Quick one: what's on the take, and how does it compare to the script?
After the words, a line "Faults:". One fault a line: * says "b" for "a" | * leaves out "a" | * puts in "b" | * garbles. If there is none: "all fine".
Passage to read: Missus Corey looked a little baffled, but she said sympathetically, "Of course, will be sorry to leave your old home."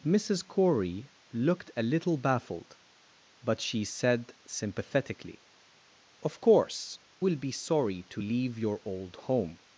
Missus Corey looked a little baffled, but she said sympathetically, "Of course, will be sorry to leave your old home."
Faults:
all fine